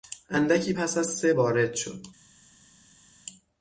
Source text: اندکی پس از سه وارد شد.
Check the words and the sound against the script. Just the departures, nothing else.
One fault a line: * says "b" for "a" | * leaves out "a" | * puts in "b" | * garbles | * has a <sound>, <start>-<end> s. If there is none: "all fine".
all fine